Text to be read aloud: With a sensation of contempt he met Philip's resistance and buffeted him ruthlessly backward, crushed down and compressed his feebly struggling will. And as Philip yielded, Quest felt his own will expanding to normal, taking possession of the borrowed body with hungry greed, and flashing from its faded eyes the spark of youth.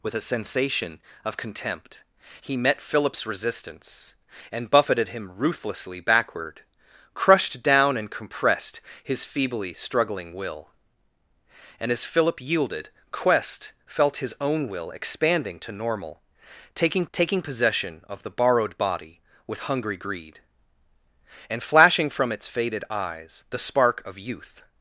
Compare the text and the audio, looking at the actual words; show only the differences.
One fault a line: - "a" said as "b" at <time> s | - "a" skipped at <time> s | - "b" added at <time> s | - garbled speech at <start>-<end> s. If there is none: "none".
- "taking" added at 17.1 s